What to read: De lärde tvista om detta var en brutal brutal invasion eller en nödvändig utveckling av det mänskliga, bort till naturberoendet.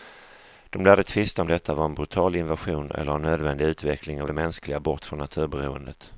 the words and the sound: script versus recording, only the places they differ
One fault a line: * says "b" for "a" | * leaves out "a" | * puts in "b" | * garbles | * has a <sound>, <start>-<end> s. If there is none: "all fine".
* leaves out "brutal"
* says "från" for "till"